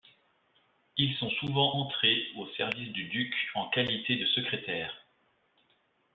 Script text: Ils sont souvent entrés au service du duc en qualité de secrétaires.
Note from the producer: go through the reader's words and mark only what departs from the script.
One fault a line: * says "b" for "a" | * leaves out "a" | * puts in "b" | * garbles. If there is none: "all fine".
all fine